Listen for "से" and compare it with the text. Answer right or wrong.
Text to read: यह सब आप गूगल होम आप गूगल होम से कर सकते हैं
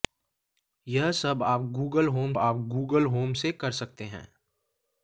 right